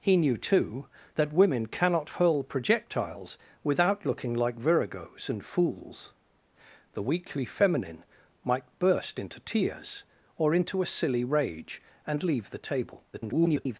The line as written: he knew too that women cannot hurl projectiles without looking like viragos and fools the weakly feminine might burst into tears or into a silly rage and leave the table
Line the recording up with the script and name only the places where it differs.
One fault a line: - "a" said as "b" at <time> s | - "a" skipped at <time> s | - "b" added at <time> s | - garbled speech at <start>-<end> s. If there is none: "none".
- garbled speech at 13.1-13.8 s